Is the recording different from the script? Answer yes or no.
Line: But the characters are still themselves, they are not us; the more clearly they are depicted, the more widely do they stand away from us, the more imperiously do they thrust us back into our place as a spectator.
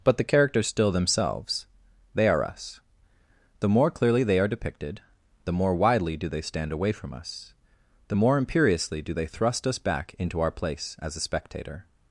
yes